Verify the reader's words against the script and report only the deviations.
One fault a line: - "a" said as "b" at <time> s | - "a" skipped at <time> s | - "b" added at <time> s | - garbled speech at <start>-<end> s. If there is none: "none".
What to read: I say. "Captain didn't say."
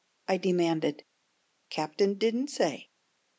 - "say" said as "demanded" at 0.4 s